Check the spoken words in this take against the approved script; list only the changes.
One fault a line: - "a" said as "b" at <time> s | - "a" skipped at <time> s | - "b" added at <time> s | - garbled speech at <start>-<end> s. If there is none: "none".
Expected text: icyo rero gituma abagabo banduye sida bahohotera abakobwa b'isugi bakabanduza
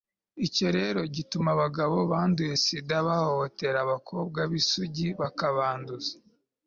none